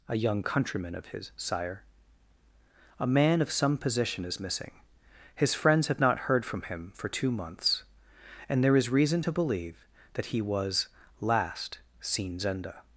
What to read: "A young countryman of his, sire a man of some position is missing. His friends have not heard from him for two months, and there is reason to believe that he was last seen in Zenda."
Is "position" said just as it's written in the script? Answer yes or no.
yes